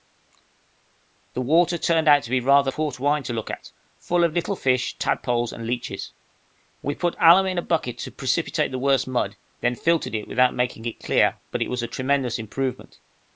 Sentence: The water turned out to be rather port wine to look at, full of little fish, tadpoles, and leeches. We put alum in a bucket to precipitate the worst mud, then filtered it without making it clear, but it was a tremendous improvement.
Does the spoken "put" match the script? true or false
true